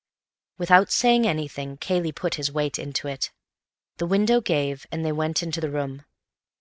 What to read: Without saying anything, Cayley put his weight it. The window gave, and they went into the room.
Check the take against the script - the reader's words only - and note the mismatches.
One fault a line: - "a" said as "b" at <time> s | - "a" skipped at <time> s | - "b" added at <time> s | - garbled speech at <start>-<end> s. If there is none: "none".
- "into" added at 2.8 s